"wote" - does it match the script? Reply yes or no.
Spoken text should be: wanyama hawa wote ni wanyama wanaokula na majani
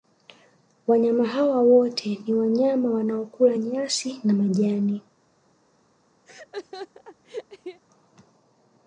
yes